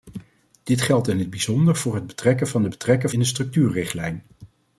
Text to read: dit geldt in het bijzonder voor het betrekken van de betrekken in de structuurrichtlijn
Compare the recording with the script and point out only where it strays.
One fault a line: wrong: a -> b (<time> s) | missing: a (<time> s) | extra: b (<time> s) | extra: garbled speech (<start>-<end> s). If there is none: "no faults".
no faults